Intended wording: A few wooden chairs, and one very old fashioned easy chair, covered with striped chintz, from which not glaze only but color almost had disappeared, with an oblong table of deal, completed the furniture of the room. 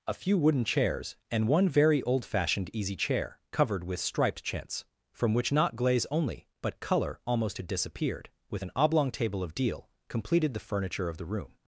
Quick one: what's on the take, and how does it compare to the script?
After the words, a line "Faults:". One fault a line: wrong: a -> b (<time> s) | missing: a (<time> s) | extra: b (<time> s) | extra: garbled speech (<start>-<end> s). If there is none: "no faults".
A few wooden chairs, and one very old fashioned easy chair, covered with striped chintz, from which not glaze only but color almost had disappeared, with an oblong table of deal, completed the furniture of the room.
Faults:
no faults